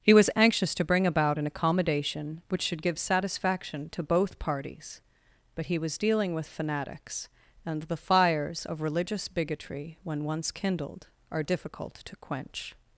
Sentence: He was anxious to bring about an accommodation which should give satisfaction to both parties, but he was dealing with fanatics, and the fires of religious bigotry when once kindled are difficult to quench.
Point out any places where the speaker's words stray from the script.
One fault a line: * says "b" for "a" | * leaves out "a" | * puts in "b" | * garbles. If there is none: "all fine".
all fine